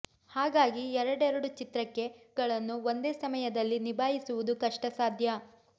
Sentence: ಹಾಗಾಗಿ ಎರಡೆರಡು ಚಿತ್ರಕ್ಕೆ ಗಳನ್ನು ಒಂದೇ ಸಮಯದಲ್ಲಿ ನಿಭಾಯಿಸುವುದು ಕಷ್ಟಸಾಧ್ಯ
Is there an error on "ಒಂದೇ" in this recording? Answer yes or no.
no